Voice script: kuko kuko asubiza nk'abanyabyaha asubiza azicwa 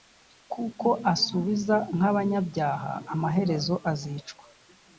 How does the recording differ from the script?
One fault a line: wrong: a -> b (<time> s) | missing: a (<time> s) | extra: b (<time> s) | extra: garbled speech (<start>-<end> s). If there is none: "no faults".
missing: kuko (0.9 s)
wrong: asubiza -> amaherezo (3.1 s)